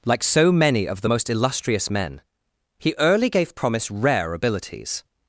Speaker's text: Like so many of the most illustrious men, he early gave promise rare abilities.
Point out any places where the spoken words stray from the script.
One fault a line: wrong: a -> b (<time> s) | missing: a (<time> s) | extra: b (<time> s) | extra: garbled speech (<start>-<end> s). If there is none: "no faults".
no faults